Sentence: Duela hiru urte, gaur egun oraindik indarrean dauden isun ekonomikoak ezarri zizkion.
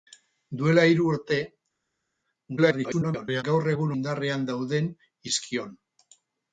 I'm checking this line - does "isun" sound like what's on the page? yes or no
no